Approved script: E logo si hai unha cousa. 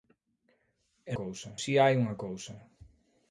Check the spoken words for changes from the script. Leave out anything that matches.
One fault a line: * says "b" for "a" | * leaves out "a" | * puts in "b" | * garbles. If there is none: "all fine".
* says "cousa" for "logo"